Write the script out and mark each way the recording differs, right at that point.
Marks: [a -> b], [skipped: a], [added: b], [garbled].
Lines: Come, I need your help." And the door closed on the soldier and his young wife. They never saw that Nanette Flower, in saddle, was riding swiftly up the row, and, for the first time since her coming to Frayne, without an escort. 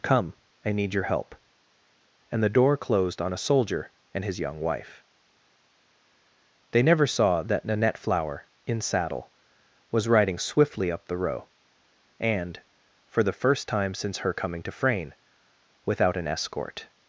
Come, I need your help." And the door closed on [the -> a] soldier and his young wife. They never saw that Nanette Flower, in saddle, was riding swiftly up the row, and, for the first time since her coming to Frayne, without an escort.